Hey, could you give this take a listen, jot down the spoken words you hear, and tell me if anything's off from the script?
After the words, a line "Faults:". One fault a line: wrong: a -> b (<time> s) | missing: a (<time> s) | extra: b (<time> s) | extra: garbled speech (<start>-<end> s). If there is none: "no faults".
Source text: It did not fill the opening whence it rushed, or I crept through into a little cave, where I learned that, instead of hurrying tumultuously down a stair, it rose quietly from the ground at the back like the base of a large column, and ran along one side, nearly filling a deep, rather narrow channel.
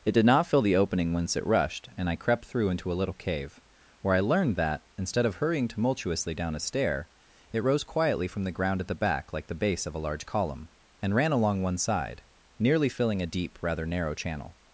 It did not fill the opening whence it rushed, and I crept through into a little cave, where I learned that, instead of hurrying tumultuously down a stair, it rose quietly from the ground at the back like the base of a large column, and ran along one side, nearly filling a deep, rather narrow channel.
Faults:
wrong: or -> and (1.9 s)